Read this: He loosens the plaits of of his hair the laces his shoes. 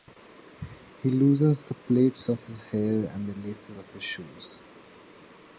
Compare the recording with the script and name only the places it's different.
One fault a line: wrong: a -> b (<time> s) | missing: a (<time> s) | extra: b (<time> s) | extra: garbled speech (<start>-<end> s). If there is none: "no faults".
missing: of (2.4 s)
extra: and (3.0 s)
extra: of (3.7 s)